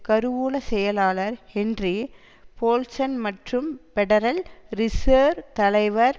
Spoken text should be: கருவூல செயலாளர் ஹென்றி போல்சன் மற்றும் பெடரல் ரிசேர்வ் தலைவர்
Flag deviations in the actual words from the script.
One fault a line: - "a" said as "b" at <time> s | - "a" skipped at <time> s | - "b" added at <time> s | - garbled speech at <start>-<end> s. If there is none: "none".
none